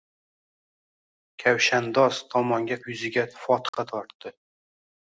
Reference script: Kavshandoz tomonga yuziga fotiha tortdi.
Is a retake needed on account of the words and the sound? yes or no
yes